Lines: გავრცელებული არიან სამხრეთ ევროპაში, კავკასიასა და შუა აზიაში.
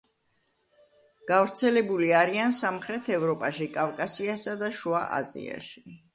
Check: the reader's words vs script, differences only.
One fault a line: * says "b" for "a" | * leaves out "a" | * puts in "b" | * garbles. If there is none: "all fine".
all fine